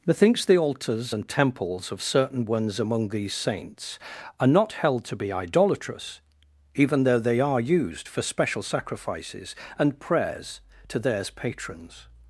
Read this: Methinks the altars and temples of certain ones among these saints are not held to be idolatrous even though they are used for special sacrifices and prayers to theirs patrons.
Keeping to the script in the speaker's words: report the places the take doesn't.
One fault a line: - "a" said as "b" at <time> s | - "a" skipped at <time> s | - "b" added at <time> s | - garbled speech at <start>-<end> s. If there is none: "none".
none